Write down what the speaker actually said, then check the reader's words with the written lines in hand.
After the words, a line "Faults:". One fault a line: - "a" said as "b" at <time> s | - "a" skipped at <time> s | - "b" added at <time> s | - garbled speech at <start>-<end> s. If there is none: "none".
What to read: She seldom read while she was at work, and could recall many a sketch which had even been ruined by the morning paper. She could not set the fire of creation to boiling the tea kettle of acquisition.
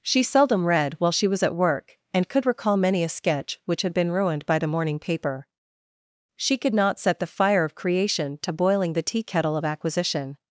She seldom read while she was at work, and could recall many a sketch which had been ruined by the morning paper. She could not set the fire of creation to boiling the tea kettle of acquisition.
Faults:
- "even" skipped at 3.9 s